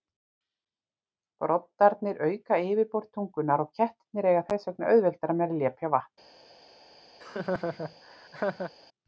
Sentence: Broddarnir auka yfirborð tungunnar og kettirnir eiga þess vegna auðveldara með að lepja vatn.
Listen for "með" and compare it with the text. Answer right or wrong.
right